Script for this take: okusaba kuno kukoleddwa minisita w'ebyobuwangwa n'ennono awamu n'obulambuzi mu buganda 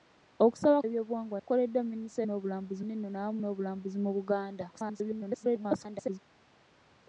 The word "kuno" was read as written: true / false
false